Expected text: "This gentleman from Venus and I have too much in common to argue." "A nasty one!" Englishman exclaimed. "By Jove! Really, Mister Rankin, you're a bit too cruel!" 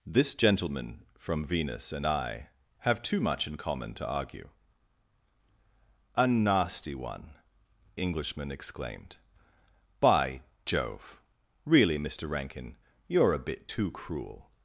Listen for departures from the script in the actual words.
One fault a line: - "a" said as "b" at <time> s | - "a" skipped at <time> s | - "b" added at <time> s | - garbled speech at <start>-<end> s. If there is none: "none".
none